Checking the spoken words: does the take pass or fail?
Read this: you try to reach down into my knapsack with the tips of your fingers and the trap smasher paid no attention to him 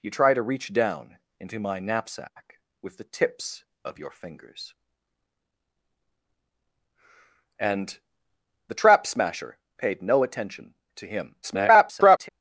fail